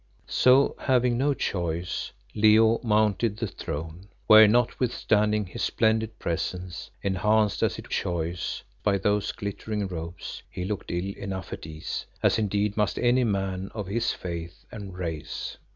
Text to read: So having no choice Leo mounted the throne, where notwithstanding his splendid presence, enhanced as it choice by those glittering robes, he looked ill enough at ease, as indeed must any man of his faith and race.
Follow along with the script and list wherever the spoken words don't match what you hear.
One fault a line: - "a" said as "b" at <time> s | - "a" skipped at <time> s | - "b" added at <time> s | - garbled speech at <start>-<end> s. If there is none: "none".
none